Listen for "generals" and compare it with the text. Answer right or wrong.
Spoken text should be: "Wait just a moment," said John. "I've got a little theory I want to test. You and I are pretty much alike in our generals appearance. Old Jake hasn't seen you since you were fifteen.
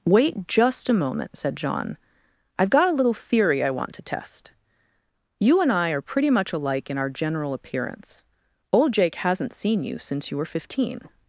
wrong